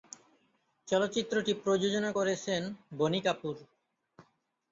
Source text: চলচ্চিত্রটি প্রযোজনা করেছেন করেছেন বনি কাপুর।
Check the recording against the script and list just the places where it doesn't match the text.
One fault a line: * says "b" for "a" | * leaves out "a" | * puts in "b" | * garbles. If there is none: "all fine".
* leaves out "করেছেন"